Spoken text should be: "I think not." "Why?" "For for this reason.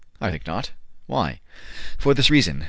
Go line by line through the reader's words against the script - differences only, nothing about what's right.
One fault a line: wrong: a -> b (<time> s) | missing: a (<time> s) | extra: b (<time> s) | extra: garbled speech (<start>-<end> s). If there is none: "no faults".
missing: for (2.1 s)